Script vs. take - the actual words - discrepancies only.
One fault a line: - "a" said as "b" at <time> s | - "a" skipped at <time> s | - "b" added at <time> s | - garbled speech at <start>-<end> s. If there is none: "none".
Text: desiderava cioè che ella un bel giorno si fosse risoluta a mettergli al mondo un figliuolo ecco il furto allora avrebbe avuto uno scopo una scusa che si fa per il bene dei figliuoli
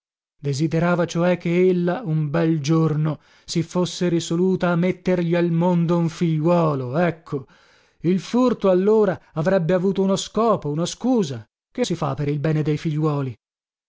none